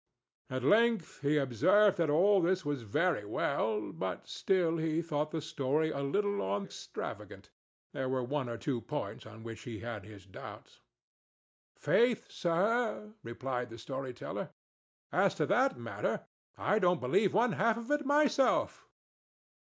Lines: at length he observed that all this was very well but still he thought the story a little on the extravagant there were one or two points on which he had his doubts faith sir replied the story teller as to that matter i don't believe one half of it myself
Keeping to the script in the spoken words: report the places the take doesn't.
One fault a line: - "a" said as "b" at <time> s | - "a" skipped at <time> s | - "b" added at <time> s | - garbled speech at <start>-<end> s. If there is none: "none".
- "the" skipped at 6.6 s